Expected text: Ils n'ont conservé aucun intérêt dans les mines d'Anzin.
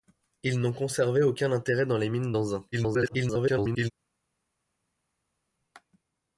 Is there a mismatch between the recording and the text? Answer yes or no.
yes